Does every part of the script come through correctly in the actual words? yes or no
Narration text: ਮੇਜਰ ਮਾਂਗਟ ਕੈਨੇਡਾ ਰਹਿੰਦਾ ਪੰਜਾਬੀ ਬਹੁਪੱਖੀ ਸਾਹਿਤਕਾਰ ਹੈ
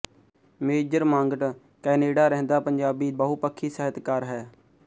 yes